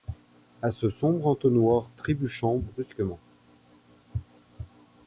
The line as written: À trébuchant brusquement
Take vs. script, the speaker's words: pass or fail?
fail